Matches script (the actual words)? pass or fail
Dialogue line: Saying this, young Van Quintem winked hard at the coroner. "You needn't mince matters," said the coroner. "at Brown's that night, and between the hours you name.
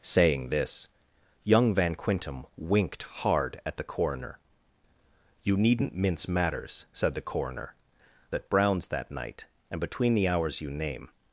pass